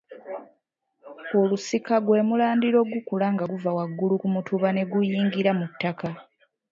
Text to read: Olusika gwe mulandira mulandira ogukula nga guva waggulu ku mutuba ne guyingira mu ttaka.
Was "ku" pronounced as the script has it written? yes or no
yes